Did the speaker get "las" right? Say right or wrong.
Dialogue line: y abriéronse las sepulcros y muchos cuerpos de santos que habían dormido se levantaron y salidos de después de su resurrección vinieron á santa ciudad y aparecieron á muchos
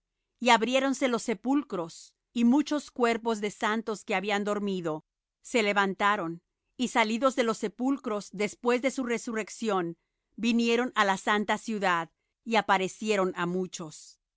wrong